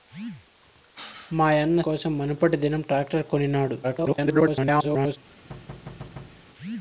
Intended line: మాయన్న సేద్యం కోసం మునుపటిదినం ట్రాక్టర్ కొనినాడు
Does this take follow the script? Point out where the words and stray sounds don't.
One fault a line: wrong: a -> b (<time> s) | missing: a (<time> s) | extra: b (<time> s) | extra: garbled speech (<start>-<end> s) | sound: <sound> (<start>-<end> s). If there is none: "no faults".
missing: సేద్యం (1.8 s)
extra: garbled speech (3.8-5.2 s)
sound: thud (5.5-6.4 s)